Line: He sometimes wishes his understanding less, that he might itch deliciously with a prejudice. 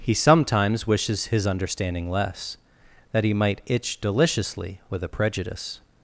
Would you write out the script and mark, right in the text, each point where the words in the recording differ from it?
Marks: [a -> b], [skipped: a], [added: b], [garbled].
He sometimes wishes his understanding less, that he might itch deliciously with a prejudice.